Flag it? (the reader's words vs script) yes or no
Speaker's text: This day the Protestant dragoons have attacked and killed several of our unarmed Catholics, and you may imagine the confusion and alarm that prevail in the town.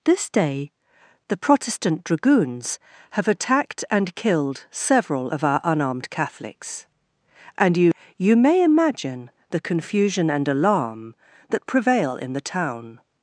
yes